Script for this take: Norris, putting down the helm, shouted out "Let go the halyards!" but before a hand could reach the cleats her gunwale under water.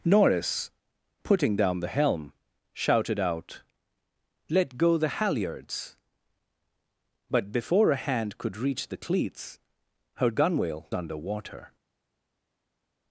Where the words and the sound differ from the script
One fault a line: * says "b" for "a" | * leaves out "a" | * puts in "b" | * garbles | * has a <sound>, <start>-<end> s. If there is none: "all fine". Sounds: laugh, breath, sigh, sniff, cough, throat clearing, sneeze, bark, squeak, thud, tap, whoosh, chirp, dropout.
all fine